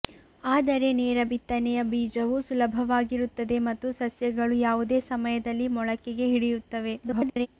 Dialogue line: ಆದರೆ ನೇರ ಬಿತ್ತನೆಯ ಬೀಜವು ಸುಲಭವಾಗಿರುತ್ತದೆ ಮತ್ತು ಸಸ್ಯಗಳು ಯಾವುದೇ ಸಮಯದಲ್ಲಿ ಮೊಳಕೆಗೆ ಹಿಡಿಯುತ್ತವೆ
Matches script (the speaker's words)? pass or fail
fail